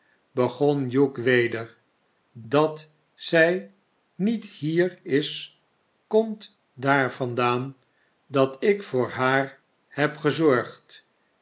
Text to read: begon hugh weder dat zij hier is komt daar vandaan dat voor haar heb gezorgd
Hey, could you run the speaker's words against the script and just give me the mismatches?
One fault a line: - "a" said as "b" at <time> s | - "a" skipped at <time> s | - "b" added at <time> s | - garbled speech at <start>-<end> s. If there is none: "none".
- "niet" added at 4.1 s
- "ik" added at 8.6 s